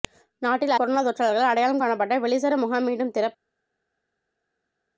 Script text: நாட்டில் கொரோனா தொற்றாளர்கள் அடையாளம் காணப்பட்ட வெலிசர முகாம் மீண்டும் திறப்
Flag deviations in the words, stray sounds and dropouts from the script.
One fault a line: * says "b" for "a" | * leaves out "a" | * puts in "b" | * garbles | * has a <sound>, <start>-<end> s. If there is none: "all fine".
all fine